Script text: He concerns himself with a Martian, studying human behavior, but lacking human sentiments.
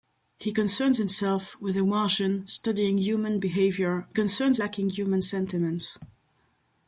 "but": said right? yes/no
no